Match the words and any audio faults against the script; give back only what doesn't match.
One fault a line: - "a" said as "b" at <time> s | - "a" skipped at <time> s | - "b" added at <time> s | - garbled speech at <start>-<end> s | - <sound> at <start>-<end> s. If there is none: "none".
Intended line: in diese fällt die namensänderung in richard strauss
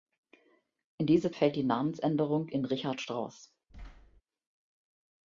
- thud at 3.7-4.2 s